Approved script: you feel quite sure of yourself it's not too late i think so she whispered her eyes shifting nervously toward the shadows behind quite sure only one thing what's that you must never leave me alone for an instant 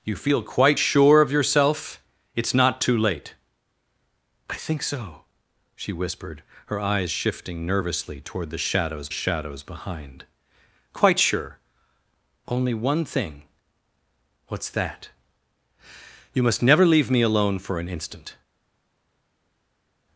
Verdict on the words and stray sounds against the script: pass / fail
fail